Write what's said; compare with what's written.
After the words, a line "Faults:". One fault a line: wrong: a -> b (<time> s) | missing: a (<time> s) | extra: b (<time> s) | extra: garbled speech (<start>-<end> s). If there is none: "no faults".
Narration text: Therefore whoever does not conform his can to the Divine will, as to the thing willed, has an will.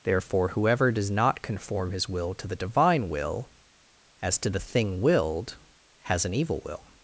Therefore whoever does not conform his will to the Divine will, as to the thing willed, has an evil will.
Faults:
wrong: can -> will (2.1 s)
extra: evil (6.3 s)